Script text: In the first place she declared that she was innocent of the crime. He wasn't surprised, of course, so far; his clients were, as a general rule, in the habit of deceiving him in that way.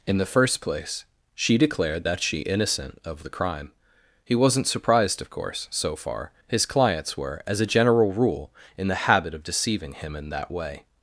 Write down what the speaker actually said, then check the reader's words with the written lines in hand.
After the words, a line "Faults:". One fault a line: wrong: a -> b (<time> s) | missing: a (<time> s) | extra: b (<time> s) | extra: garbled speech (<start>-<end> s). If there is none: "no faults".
In the first place she declared that she innocent of the crime. He wasn't surprised, of course, so far; his clients were, as a general rule, in the habit of deceiving him in that way.
Faults:
missing: was (2.4 s)